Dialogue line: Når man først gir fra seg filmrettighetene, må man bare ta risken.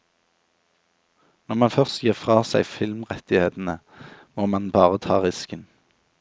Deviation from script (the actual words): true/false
false